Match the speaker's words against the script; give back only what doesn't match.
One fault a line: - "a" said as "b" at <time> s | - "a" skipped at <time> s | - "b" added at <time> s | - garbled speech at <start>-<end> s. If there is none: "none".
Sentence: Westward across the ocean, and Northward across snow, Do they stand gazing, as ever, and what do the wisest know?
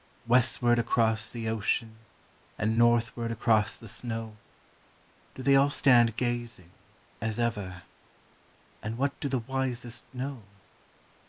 - "the" added at 3.7 s
- "all" added at 5.6 s